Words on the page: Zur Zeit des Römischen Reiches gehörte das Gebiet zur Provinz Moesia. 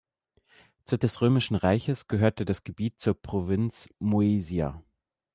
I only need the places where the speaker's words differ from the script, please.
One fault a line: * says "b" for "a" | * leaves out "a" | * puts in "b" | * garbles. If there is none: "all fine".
* leaves out "Zeit"